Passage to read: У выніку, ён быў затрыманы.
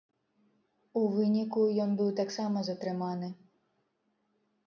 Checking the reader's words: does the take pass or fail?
fail